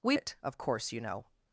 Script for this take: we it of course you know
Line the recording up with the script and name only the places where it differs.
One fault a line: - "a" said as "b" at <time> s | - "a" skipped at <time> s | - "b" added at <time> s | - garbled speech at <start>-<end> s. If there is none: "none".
none